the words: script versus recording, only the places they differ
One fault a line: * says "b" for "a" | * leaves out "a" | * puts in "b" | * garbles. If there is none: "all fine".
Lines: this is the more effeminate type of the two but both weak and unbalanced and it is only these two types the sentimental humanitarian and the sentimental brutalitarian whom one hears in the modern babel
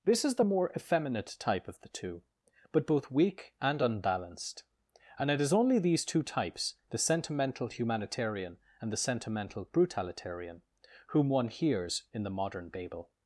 all fine